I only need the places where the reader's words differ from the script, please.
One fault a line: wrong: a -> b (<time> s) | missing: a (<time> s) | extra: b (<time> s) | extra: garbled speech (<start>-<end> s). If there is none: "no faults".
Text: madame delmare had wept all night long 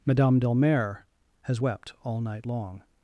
wrong: had -> has (1.4 s)